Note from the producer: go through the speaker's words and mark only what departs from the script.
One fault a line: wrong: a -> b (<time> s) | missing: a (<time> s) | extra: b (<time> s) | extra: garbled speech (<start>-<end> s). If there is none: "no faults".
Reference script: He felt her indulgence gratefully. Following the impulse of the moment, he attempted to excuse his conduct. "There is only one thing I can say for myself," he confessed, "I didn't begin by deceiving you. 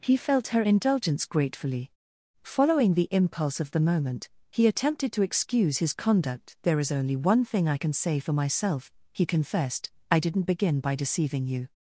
no faults